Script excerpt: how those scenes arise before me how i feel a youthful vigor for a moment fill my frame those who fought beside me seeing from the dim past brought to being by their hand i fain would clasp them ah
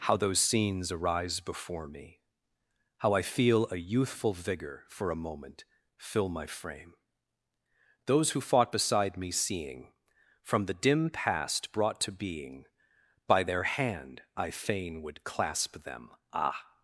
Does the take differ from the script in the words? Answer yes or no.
no